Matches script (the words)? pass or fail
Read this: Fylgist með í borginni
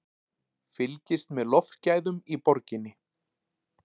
fail